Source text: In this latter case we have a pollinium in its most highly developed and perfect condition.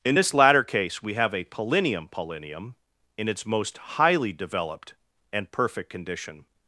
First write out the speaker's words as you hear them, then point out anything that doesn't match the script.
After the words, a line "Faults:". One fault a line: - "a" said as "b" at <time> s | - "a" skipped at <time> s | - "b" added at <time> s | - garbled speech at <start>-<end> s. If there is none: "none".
In this latter case we have a pollinium pollinium in its most highly developed and perfect condition.
Faults:
- "pollinium" added at 2.1 s